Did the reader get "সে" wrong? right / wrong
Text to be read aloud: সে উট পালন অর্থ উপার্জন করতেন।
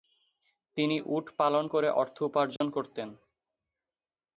wrong